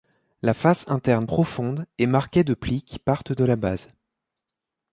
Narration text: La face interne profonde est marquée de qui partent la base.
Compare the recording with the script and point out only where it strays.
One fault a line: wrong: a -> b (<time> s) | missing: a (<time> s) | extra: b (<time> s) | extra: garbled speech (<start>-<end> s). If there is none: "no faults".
extra: plis (2.5 s)
extra: de (3.3 s)